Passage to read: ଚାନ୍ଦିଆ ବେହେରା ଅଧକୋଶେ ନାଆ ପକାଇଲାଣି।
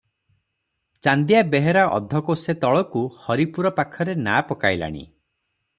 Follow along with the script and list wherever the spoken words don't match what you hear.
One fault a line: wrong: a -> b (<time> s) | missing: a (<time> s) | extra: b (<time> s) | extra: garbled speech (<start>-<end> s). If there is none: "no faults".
extra: ତଳକୁ ହରିପୁର ପାଖରେ (2.6 s)